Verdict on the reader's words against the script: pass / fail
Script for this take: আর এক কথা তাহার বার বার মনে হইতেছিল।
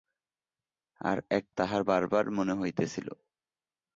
fail